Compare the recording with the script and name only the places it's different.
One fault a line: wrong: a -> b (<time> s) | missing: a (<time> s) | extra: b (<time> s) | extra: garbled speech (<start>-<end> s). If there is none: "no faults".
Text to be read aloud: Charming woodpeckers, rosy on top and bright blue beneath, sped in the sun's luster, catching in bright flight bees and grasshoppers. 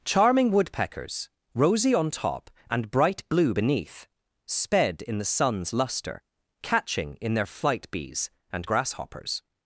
wrong: bright -> their (7.3 s)